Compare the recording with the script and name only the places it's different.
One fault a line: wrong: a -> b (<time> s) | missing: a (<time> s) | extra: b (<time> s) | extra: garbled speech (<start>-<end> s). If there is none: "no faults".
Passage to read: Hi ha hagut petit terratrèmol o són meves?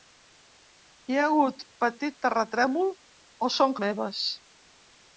no faults